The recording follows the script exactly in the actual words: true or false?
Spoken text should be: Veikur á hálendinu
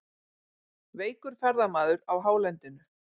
false